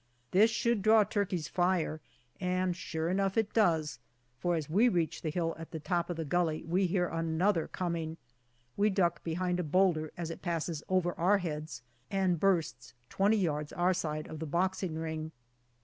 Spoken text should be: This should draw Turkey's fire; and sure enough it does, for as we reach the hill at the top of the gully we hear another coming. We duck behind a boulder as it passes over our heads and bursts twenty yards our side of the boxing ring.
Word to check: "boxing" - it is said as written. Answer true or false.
true